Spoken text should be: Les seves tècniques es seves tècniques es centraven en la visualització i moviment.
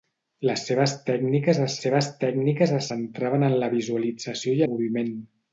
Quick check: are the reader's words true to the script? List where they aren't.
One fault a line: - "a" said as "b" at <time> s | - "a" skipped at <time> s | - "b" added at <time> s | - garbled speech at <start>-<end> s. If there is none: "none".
none